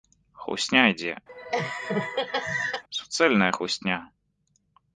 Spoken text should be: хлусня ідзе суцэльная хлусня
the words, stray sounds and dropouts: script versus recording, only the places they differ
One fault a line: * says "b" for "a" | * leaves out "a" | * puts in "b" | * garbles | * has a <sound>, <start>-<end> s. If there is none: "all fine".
* has a laugh, 1.3-2.8 s